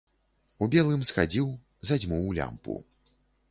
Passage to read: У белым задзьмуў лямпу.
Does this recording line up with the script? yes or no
no